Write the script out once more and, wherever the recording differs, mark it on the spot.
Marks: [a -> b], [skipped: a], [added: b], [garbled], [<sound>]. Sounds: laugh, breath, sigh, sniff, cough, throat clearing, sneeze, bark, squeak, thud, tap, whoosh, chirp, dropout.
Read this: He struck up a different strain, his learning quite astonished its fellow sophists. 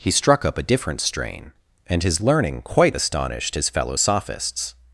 He struck up a different strain, [added: and] his learning quite astonished [its -> his] fellow sophists.